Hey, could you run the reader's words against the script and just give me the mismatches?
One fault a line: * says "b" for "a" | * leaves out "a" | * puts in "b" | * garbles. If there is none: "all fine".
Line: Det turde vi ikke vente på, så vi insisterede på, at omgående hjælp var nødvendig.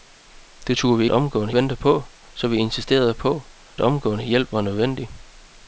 * says "omgående" for "ikke"
* leaves out "at"